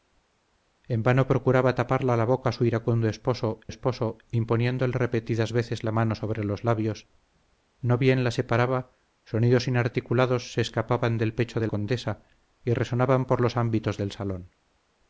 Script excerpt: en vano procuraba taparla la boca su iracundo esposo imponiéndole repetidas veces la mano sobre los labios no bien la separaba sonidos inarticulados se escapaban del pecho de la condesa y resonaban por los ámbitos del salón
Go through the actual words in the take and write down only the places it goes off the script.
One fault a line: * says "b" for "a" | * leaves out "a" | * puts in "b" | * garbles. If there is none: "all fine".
* puts in "esposo"
* leaves out "la"